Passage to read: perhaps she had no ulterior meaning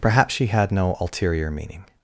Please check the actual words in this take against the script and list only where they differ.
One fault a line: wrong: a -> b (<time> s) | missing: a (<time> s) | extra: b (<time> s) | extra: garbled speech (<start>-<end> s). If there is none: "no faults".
no faults